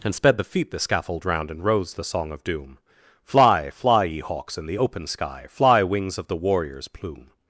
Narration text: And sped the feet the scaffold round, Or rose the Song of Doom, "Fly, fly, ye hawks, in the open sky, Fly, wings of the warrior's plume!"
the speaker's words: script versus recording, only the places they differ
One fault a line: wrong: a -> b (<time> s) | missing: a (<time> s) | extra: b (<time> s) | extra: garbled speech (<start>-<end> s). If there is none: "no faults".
wrong: Or -> And (1.5 s)